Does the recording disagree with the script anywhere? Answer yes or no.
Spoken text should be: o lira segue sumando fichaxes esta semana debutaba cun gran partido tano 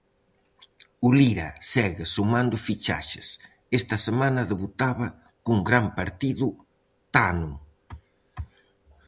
no